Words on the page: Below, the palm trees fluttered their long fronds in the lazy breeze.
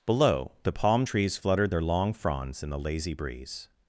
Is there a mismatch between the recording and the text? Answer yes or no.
no